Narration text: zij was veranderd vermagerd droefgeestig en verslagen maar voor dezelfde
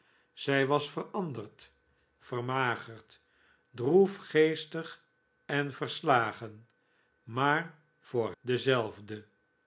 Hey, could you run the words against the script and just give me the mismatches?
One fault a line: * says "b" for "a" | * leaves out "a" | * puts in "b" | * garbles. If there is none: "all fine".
all fine